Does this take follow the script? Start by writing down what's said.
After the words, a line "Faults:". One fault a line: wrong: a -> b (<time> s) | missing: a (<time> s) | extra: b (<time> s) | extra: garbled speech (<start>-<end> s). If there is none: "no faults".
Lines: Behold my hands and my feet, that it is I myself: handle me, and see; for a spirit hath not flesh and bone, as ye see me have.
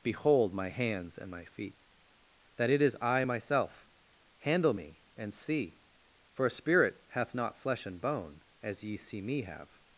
Behold my hands and my feet, that it is I myself: handle me, and see; for a spirit hath not flesh and bone, as ye see me have.
Faults:
no faults